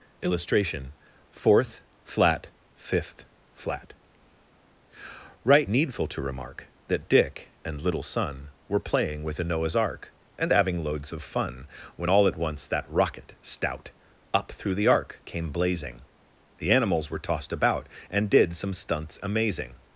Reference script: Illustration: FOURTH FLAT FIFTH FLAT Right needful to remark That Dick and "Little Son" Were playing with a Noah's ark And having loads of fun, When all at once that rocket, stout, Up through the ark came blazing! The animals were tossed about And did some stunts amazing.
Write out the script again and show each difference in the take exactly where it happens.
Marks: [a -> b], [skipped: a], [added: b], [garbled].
Illustration: FOURTH FLAT FIFTH FLAT Right needful to remark That Dick and "Little Son" Were playing with a Noah's ark And having loads of fun, When all at once that rocket, stout, Up through the ark came blazing! The animals were tossed about And did some stunts amazing.